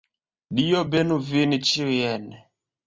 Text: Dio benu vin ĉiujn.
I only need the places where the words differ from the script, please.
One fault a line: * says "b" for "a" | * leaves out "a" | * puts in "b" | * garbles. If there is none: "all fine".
all fine